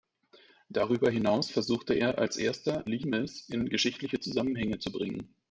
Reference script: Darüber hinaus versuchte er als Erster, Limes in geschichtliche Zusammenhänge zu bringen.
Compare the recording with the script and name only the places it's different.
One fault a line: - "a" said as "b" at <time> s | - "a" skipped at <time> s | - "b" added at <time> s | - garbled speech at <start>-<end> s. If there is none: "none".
none